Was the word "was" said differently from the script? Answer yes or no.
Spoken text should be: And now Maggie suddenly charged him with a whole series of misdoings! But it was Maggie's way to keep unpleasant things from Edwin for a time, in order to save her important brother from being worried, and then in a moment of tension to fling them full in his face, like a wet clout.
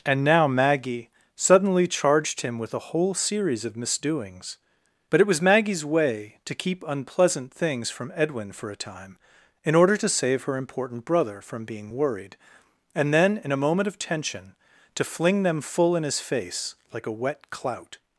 no